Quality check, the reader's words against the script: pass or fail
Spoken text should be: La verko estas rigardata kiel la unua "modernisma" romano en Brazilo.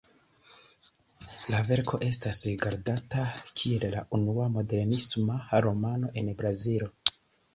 pass